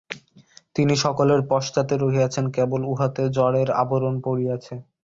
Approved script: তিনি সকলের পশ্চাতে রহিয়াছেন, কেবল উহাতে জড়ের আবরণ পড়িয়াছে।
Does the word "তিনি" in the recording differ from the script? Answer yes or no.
no